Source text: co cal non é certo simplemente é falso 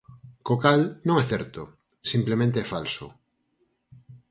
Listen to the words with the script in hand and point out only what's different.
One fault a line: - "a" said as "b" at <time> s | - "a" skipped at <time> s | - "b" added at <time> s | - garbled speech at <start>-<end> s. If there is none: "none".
none